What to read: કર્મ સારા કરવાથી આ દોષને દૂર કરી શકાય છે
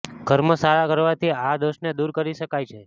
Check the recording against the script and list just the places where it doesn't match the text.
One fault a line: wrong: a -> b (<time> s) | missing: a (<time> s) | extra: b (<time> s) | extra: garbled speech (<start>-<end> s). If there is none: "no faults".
no faults